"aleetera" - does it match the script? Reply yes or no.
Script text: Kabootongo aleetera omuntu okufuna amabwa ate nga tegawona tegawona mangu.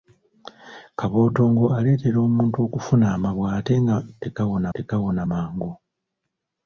yes